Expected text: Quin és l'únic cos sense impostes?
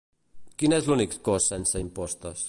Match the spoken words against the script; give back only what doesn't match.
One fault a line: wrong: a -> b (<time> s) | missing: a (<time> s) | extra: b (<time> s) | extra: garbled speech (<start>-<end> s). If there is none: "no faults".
no faults